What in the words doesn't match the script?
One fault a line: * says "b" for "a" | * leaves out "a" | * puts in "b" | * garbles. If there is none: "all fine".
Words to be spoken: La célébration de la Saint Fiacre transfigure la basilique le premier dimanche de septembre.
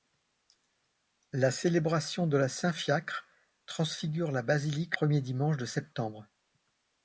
* leaves out "le"